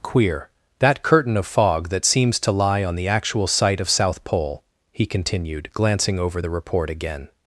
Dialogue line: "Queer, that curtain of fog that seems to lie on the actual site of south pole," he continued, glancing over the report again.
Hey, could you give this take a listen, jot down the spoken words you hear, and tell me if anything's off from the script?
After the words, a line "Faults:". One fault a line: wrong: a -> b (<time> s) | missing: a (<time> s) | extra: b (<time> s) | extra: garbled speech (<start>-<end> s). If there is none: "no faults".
"Queer, that curtain of fog that seems to lie on the actual site of south pole," he continued, glancing over the report again.
Faults:
no faults